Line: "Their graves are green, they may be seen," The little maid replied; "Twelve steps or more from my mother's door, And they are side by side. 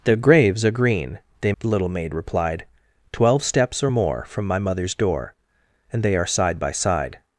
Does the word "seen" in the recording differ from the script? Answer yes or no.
yes